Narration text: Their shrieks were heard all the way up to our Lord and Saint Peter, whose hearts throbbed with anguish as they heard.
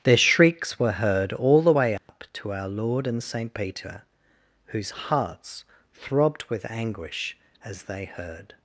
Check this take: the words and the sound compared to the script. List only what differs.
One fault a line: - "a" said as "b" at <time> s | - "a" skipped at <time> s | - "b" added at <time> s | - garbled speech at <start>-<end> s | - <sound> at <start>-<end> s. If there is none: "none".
- dropout at 2.0-2.1 s